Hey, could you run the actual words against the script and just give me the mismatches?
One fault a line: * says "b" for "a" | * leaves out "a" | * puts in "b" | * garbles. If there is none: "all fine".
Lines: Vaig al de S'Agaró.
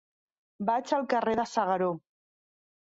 * puts in "carrer"